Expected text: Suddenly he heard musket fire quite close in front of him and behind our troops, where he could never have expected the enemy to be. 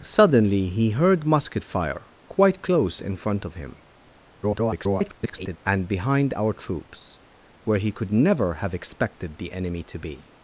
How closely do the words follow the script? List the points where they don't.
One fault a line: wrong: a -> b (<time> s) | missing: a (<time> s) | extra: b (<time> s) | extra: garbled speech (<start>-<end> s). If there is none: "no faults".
extra: garbled speech (4.4-5.6 s)